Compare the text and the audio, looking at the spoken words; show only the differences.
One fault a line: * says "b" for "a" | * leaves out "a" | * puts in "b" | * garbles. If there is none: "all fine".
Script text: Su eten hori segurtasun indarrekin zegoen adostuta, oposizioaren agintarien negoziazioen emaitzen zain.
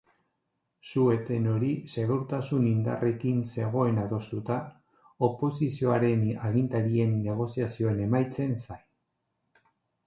all fine